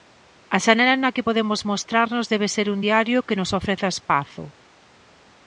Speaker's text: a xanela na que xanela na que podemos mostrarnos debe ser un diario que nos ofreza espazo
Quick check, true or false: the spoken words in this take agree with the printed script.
false